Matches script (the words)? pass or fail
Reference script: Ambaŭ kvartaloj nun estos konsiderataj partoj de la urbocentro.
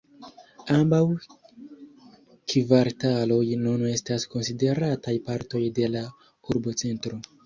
fail